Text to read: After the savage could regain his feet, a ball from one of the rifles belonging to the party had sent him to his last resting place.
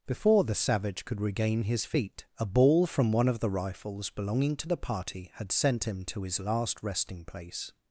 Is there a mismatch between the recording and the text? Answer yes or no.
yes